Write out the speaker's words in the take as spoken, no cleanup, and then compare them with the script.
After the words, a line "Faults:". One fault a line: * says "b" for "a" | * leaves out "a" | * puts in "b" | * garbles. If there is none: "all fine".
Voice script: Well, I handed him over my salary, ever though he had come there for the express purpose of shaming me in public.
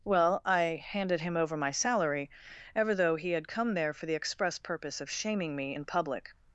Well, I handed him over my salary, ever though he had come there for the express purpose of shaming me in public.
Faults:
all fine